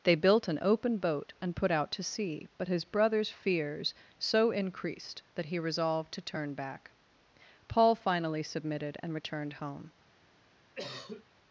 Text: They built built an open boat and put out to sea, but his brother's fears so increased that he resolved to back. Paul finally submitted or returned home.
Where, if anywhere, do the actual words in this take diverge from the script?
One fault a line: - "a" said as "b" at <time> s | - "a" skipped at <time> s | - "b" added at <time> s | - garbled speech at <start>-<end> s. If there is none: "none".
- "built" skipped at 0.5 s
- "turn" added at 6.2 s
- "or" said as "and" at 9.0 s